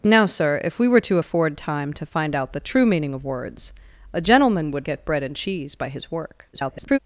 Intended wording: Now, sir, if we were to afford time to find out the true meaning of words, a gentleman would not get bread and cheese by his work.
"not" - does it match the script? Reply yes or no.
no